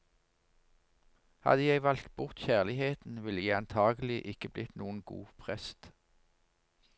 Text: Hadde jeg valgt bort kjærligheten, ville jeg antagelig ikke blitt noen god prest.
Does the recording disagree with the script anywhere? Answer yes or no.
no